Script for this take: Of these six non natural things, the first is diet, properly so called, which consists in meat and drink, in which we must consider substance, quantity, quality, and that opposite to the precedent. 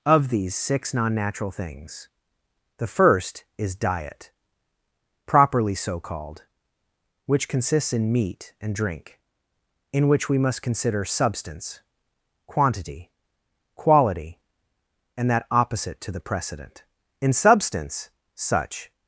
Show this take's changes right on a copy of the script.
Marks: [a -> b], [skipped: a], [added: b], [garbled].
Of these six non natural things, the first is diet, properly so called, which consists in meat and drink, in which we must consider substance, quantity, quality, and that opposite to the precedent. [added: In substance such]